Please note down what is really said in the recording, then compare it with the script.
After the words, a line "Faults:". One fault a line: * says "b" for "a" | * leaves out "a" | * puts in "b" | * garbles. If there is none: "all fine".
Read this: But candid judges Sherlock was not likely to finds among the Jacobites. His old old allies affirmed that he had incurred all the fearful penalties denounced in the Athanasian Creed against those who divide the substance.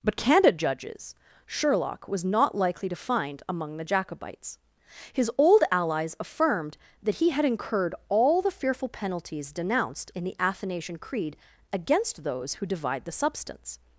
But candid judges Sherlock was not likely to find among the Jacobites. His old allies affirmed that he had incurred all the fearful penalties denounced in the Athanasian Creed against those who divide the substance.
Faults:
* says "find" for "finds"
* leaves out "old"